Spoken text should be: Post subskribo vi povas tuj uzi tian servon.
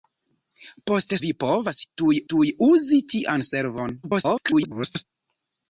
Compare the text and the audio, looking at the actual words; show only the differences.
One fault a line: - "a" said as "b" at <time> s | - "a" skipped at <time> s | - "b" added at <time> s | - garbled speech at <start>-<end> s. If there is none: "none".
- "subskribo" skipped at 1.1 s
- "tuj" added at 2.3 s
- garbled speech at 4.0-5.0 s